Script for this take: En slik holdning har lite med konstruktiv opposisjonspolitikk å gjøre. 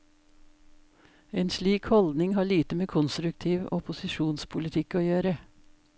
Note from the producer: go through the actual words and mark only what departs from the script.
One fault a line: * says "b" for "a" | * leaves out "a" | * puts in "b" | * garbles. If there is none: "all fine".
all fine